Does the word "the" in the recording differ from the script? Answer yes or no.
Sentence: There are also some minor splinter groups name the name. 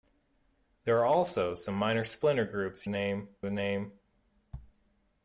no